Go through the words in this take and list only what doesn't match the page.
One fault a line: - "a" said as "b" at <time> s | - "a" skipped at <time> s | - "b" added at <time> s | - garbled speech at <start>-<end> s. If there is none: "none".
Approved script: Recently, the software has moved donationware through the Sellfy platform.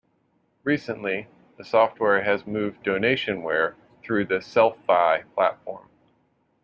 none